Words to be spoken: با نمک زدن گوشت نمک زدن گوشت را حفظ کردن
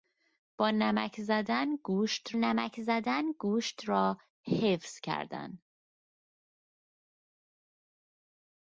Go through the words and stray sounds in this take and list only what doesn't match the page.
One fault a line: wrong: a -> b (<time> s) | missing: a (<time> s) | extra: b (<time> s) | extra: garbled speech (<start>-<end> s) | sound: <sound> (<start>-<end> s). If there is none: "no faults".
no faults